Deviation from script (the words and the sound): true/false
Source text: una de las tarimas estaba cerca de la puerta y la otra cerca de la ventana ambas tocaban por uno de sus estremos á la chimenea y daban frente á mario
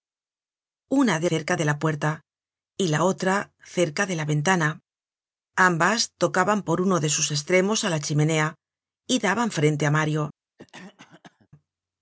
true